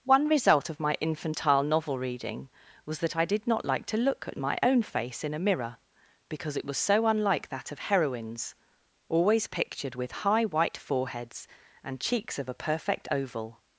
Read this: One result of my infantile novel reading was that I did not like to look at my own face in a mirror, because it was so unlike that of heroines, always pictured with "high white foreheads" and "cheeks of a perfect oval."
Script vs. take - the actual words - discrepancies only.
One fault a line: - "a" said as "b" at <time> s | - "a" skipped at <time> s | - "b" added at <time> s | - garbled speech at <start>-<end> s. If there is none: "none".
none